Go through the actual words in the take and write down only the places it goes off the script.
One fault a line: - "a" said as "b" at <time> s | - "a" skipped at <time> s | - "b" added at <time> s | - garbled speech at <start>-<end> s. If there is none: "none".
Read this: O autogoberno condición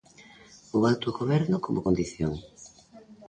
- "como" added at 1.6 s